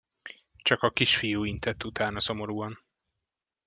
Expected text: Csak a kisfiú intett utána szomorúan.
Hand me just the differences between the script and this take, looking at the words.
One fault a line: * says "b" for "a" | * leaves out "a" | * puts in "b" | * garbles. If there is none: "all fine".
all fine